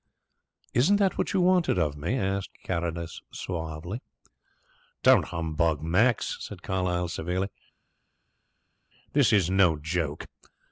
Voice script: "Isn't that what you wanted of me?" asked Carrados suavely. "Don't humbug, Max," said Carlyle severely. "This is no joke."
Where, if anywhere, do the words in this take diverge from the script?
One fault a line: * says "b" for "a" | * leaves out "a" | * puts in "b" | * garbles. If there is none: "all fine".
all fine